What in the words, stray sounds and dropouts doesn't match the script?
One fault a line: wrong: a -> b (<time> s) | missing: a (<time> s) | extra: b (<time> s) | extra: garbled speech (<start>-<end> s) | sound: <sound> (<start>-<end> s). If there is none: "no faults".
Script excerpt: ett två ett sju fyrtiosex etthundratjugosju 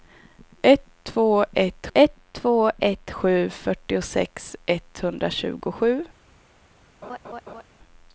extra: ett två ett (1.9 s)
sound: laugh (7.0-7.6 s)